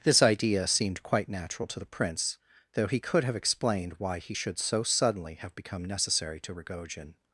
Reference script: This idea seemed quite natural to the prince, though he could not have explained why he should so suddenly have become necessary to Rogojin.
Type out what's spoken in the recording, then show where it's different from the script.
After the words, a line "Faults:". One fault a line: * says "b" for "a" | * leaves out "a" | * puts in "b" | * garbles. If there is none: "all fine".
This idea seemed quite natural to the prince, though he could have explained why he should so suddenly have become necessary to Rogojin.
Faults:
* leaves out "not"